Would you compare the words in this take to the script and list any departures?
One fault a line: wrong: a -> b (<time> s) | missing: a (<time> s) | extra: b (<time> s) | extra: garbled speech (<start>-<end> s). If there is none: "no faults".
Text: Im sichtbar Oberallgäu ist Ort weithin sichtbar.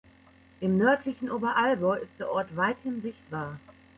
wrong: sichtbar -> nördlichen (0.8 s)
extra: der (2.2 s)